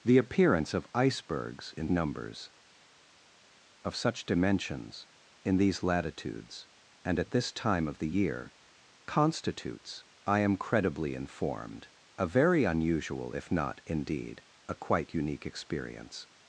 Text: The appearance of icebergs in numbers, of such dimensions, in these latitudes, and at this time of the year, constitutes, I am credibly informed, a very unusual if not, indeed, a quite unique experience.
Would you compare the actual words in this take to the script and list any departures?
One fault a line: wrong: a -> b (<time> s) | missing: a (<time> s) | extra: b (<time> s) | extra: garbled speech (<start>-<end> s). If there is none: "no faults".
no faults